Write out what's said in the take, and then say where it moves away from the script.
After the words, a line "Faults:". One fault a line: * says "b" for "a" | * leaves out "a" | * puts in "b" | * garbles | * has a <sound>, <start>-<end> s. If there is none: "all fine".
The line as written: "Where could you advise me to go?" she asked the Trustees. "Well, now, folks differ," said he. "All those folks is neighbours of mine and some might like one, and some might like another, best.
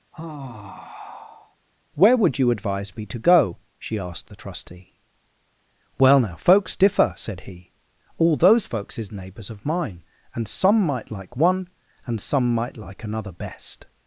"Where would you advise me to go?" she asked the Trustee. "Well, now, folks differ," said he. "All those folks is neighbours of mine and some might like one, and some might like another, best.
Faults:
* has a sigh, 0.1-1.6 s
* says "would" for "could"
* says "Trustee" for "Trustees"